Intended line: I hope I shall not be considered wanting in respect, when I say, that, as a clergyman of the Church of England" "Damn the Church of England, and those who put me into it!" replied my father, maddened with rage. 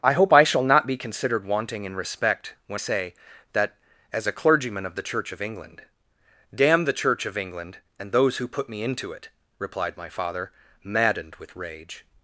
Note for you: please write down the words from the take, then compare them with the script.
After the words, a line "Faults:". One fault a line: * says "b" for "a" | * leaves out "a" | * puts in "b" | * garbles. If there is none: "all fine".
I hope I shall not be considered wanting in respect, when say, that, as a clergyman of the Church of England" "Damn the Church of England, and those who put me into it!" replied my father, maddened with rage.
Faults:
* leaves out "I"